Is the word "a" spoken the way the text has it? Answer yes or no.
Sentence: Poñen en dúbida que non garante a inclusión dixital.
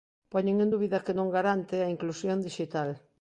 yes